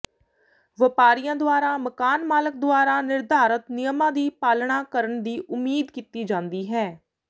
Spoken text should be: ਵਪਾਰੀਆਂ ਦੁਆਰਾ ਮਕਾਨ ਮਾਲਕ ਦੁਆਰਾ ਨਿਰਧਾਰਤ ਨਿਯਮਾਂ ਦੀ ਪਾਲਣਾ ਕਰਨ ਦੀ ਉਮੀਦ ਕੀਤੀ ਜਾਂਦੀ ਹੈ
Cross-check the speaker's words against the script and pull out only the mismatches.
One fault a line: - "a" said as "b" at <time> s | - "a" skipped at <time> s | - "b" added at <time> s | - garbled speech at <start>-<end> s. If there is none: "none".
none